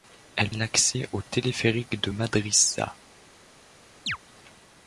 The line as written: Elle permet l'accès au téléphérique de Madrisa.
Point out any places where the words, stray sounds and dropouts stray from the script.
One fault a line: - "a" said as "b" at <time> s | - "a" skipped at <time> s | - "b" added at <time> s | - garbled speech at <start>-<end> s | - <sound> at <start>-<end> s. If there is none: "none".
- "permet" skipped at 0.5 s
- chirp at 4.1-4.2 s